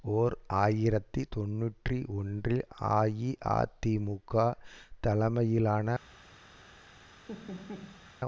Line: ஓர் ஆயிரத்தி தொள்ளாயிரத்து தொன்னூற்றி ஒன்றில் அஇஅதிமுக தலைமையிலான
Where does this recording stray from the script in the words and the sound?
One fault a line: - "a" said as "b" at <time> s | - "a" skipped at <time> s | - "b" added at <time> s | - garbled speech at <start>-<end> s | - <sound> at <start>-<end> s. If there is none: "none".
- "தொள்ளாயிரத்து" skipped at 1.2 s
- laugh at 7.3-8.1 s